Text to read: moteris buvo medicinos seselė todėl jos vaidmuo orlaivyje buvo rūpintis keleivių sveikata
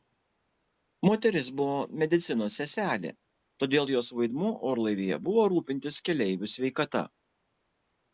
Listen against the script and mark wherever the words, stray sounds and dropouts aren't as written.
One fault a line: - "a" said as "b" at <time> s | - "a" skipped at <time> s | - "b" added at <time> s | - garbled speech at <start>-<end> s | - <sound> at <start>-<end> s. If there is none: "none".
none